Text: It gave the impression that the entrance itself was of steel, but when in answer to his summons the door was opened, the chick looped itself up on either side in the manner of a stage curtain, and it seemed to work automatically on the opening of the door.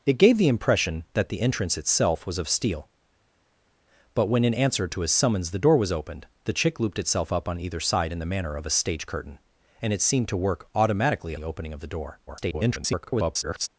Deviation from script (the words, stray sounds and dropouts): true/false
true